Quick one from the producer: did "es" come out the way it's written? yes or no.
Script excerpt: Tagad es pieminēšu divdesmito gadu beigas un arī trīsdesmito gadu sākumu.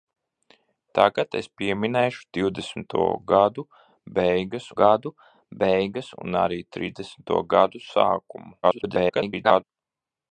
yes